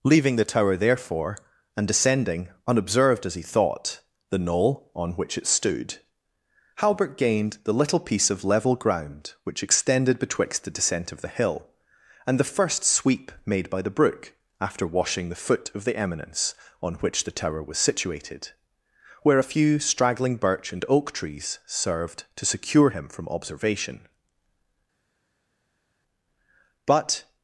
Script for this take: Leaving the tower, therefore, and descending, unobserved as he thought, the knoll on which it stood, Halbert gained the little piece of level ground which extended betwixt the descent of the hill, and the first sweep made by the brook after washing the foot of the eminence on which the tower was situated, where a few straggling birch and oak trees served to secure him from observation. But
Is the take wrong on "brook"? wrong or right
right